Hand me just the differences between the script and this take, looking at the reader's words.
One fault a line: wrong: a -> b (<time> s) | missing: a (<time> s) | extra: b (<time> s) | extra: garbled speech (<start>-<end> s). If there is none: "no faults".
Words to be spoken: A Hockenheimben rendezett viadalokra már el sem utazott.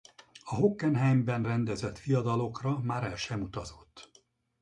no faults